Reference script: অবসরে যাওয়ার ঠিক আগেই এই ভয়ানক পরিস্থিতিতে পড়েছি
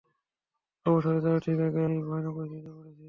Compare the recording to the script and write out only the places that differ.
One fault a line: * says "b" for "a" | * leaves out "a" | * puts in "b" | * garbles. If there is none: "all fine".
all fine